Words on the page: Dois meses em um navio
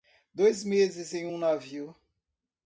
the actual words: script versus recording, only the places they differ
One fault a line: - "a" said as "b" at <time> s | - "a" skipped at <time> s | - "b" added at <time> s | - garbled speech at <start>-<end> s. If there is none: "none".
none